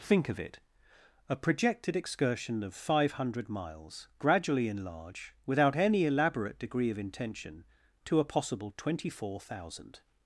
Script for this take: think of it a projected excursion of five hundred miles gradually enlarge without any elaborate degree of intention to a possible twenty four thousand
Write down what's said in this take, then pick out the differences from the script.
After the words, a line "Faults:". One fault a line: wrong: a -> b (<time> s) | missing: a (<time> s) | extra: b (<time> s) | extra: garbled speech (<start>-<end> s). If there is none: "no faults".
think of it a projected excursion of five hundred miles gradually enlarge without any elaborate degree of intention to a possible twenty four thousand
Faults:
no faults